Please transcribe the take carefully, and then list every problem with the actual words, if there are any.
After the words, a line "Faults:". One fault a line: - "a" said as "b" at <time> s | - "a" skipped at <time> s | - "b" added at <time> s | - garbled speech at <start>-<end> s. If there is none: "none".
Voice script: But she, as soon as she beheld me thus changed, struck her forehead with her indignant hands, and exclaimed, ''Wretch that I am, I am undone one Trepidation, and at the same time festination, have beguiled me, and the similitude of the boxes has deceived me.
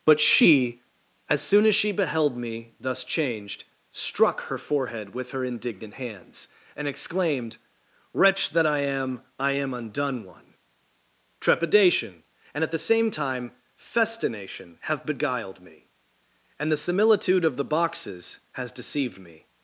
But she, as soon as she beheld me thus changed, struck her forehead with her indignant hands, and exclaimed, ''Wretch that I am, I am undone one Trepidation, and at the same time festination, have beguiled me, and the similitude of the boxes has deceived me.
Faults:
none